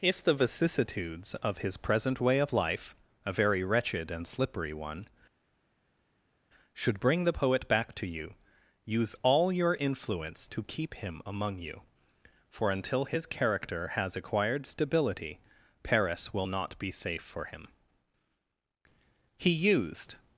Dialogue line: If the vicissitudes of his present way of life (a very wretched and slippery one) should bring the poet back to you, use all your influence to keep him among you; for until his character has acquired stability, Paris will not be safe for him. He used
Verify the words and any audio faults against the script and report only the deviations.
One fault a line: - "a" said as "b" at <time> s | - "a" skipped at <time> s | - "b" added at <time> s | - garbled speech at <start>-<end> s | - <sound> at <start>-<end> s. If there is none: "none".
none